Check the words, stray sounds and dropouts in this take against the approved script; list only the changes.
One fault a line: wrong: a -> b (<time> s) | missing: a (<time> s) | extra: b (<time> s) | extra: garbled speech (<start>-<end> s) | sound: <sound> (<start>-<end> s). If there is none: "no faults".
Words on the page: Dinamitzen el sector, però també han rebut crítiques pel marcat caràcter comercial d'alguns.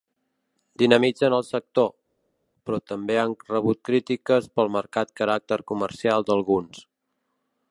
no faults